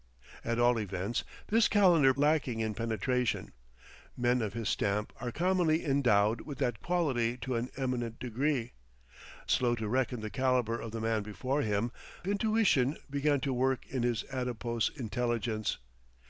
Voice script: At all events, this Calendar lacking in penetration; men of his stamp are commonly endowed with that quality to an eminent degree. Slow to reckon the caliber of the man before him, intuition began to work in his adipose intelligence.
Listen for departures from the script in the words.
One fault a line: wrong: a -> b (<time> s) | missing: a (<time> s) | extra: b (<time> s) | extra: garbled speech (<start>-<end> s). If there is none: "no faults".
no faults